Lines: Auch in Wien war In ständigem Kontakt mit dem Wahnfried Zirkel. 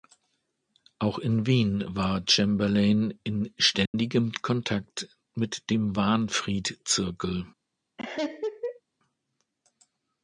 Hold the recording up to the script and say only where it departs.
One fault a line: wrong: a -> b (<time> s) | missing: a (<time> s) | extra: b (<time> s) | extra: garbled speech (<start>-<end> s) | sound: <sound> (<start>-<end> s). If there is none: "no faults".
extra: Chamberlain (2.3 s)
sound: dropout (3.9-3.9 s)
sound: laugh (8.0-8.8 s)